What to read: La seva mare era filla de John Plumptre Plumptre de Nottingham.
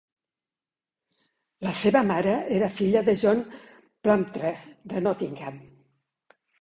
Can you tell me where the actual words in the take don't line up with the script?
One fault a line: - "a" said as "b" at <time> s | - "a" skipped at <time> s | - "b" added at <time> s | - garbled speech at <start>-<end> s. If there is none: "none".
- "Plumptre" skipped at 4.6 s